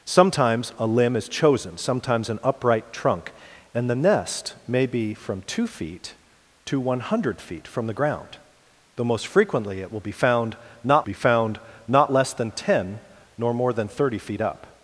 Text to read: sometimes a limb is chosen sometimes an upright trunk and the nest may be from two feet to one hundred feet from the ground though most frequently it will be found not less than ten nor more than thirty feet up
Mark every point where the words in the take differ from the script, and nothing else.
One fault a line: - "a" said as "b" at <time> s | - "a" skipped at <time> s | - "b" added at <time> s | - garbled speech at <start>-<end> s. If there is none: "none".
- "be found not" added at 11.0 s